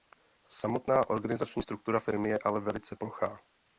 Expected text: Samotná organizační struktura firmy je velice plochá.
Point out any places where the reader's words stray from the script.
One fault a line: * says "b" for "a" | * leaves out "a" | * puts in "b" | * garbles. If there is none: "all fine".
* puts in "ale"